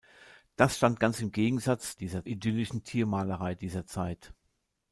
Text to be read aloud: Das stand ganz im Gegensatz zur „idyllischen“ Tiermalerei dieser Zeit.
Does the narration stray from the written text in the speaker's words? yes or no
yes